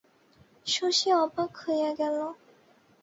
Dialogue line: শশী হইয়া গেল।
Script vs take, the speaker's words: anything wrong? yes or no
yes